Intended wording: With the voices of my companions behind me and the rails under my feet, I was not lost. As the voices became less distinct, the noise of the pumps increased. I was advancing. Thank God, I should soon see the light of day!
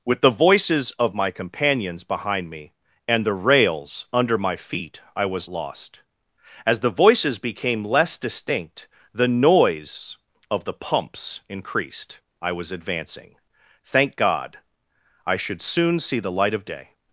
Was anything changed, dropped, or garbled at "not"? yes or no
yes